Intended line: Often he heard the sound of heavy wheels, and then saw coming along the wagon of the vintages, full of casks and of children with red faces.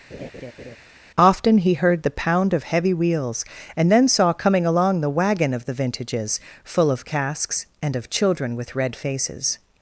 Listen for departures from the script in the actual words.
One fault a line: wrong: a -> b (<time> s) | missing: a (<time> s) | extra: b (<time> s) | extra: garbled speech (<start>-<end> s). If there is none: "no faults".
wrong: sound -> pound (2.1 s)